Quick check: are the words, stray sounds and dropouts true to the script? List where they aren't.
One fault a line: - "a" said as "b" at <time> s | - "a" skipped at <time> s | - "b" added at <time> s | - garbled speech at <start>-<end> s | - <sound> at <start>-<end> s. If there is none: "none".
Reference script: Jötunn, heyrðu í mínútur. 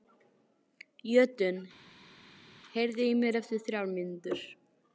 - "mér eftir þrjár" added at 3.2 s